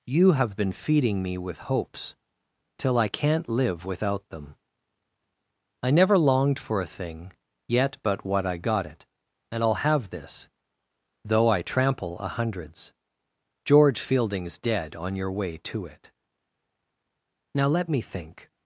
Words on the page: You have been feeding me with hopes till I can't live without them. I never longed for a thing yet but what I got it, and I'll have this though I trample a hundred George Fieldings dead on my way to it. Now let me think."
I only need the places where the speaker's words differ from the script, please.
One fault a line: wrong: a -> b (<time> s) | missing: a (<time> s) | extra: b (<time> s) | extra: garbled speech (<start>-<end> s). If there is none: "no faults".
wrong: hundred -> hundreds (12.3 s)
wrong: my -> your (15.2 s)